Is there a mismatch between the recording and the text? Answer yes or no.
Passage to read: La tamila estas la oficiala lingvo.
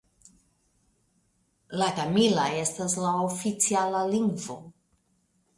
no